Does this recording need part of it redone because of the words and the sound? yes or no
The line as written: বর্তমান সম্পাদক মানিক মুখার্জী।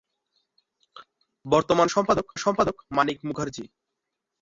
yes